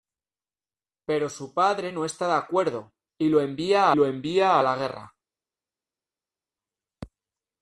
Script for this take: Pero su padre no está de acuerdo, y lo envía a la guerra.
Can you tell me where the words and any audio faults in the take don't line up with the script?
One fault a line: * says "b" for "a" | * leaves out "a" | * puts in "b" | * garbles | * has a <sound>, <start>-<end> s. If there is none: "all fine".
* puts in "lo envía"